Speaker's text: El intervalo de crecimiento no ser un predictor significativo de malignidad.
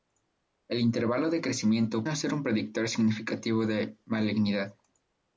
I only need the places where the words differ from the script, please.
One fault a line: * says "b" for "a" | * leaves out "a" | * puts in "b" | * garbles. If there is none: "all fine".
all fine